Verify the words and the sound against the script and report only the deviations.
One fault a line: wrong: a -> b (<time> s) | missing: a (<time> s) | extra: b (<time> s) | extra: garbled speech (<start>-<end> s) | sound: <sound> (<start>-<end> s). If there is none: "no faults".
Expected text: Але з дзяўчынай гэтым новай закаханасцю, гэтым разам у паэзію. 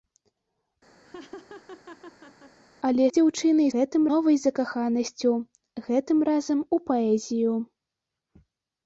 sound: laugh (1.0-2.6 s)